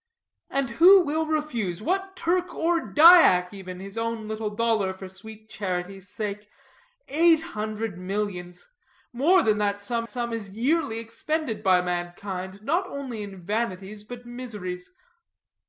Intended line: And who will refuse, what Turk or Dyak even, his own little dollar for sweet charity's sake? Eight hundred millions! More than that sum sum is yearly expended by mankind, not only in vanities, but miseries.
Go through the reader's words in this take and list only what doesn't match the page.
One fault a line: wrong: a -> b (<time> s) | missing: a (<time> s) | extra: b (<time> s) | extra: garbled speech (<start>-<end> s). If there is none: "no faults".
no faults